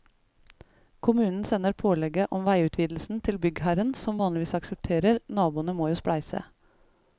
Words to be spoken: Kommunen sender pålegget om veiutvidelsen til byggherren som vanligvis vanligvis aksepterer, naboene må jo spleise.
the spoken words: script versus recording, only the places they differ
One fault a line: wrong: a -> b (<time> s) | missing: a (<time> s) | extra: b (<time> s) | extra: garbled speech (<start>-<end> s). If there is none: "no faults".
missing: vanligvis (4.5 s)